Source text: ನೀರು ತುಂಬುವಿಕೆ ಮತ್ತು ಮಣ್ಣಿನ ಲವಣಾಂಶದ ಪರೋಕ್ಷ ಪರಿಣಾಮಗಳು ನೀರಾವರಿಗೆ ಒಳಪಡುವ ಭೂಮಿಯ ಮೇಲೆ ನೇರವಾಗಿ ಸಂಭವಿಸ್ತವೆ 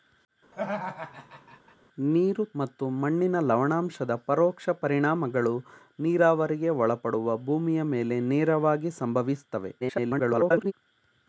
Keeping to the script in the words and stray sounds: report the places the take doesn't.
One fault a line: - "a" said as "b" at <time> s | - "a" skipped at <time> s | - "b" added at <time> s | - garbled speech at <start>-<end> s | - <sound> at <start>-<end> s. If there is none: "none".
- laugh at 0.5-1.8 s
- "ತುಂಬುವಿಕೆ" skipped at 2.4 s
- garbled speech at 9.8-10.7 s